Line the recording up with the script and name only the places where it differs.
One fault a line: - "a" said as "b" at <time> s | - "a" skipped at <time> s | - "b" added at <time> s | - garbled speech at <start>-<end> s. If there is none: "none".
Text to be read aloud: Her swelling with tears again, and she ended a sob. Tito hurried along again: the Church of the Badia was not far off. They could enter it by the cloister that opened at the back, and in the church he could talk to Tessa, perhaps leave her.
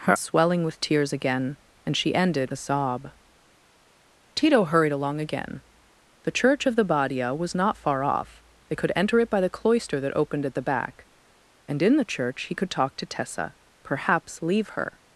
none